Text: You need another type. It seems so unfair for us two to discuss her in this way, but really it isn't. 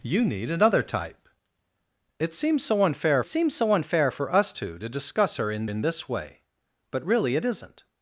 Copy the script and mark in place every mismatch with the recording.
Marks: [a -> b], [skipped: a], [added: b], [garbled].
You need another type. It seems so unfair [added: seems so unfair] for us two to discuss her in [added: in] this way, but really it isn't.